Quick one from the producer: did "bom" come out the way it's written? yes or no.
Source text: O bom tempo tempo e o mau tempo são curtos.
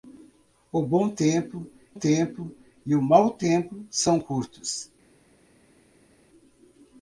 yes